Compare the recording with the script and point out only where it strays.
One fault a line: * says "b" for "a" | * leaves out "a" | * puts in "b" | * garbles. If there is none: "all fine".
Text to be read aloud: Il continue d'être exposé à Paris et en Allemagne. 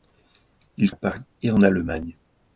* leaves out "continue d'être exposé"